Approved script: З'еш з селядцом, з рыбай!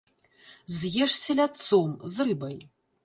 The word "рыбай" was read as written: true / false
true